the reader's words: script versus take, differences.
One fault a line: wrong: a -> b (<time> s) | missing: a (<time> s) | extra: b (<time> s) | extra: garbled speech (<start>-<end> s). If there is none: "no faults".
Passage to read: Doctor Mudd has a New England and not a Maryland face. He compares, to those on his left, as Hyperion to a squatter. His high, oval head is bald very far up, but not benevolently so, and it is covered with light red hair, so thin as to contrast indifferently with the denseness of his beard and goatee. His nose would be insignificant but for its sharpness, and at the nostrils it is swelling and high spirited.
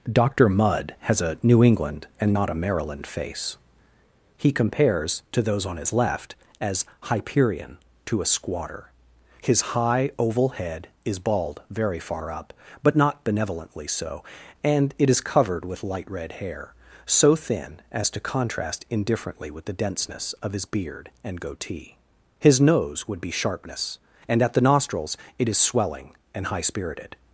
missing: insignificant but for its (23.3 s)